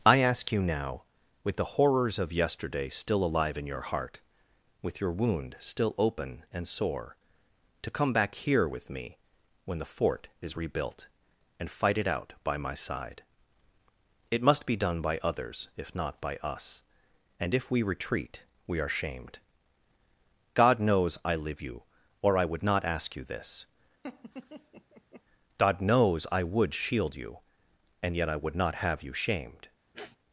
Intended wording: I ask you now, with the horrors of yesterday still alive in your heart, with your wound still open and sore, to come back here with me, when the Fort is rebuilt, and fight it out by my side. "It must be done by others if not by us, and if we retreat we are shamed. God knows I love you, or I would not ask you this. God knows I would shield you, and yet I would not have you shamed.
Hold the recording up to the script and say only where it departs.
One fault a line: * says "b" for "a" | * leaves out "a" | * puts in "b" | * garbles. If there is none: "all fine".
* says "live" for "love"